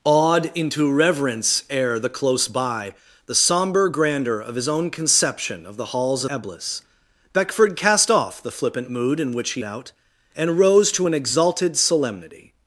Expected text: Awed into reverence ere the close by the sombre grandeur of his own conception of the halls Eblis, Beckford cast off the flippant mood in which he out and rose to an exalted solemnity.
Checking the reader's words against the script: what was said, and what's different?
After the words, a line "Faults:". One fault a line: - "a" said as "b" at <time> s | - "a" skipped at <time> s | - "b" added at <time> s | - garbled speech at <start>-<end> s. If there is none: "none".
Awed into reverence ere the close by the sombre grandeur of his own conception of the halls Eblis, Beckford cast off the flippant mood in which he out and rose to an exalted solemnity.
Faults:
none